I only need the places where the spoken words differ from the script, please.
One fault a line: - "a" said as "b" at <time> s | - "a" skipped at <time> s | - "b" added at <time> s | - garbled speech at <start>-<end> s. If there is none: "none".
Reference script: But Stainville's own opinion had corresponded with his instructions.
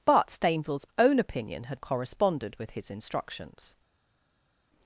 none